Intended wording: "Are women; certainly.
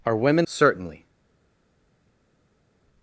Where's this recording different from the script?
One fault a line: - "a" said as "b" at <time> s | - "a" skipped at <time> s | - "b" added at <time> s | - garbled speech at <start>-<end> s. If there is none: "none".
none